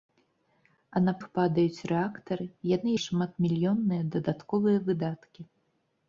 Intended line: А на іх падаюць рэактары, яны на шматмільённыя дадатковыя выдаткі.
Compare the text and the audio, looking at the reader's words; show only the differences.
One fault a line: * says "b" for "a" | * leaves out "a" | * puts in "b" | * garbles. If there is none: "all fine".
all fine